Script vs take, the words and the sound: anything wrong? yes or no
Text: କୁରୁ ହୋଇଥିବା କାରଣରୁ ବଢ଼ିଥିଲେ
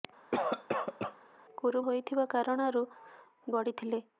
yes